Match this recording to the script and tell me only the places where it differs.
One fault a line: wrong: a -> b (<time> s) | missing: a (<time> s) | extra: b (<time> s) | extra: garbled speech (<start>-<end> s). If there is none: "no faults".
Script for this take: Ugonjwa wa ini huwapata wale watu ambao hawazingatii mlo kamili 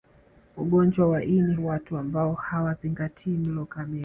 missing: huwapata wale (1.6 s)